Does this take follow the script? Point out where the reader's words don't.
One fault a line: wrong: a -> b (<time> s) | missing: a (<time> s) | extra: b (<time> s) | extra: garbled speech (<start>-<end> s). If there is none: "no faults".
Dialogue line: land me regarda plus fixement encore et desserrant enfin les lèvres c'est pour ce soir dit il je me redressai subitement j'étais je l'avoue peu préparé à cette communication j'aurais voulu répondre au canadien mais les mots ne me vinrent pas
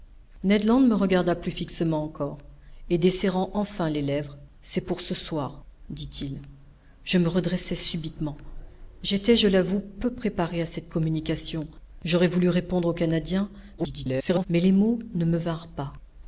extra: garbled speech (13.8-14.5 s)